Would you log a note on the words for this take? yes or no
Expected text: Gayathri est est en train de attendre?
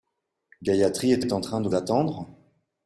no